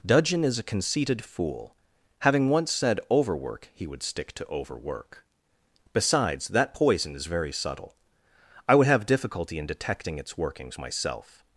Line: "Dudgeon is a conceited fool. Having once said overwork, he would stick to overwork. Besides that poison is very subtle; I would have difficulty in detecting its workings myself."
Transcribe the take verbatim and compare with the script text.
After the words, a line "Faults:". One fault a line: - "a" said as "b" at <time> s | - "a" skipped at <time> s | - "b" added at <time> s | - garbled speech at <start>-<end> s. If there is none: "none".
"Dudgeon is a conceited fool. Having once said overwork, he would stick to overwork. Besides that poison is very subtle; I would have difficulty in detecting its workings myself."
Faults:
none